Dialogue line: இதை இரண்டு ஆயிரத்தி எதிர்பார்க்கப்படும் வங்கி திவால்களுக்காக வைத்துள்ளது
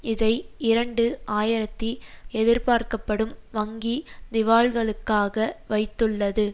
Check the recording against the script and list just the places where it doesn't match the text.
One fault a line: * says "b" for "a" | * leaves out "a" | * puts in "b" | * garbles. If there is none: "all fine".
all fine